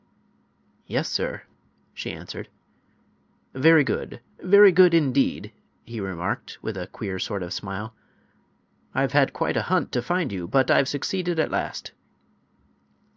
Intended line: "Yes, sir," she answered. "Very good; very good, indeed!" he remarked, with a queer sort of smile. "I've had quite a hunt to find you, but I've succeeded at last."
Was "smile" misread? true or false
false